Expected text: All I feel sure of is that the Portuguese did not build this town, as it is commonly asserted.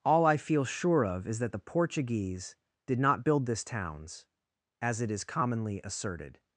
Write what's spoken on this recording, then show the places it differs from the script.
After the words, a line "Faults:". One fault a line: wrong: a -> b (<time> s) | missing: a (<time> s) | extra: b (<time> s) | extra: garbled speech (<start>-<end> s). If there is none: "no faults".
All I feel sure of is that the Portuguese did not build this towns, as it is commonly asserted.
Faults:
wrong: town -> towns (3.6 s)